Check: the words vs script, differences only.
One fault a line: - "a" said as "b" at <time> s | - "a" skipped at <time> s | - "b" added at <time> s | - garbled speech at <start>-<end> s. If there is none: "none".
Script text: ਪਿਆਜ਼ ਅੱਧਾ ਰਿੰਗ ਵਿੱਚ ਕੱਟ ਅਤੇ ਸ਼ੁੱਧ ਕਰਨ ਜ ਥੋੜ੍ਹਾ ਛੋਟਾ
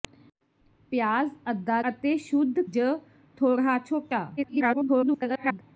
- "ਰਿੰਗ ਵਿੱਚ ਕੱਟ" skipped at 1.8 s
- "ਕਰਨ" skipped at 2.6 s
- garbled speech at 4.4-5.6 s